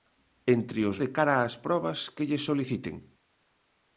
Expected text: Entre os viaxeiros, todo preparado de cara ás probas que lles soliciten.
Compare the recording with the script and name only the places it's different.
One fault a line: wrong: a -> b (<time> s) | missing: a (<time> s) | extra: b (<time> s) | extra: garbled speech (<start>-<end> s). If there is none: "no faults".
missing: viaxeiros todo preparado (1.0 s)